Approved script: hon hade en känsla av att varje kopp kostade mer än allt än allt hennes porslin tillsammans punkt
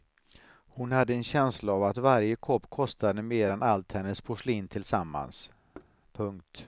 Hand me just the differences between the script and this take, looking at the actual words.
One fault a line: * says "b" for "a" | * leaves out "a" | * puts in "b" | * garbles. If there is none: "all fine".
* leaves out "än allt"